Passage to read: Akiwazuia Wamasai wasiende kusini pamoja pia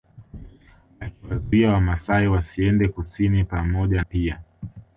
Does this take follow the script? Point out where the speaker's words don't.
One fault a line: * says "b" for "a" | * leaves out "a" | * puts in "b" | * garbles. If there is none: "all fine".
all fine